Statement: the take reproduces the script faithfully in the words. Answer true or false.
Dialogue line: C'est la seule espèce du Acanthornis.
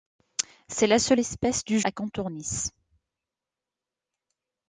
true